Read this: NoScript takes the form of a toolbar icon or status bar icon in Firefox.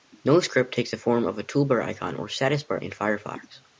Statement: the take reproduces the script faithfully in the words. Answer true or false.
false